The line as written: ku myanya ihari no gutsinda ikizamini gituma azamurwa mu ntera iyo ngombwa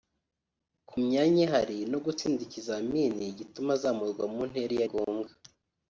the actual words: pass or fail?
pass